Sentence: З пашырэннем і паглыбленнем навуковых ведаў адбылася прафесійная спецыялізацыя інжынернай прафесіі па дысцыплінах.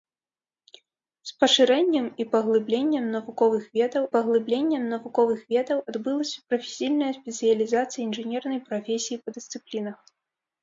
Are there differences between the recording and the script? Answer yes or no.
yes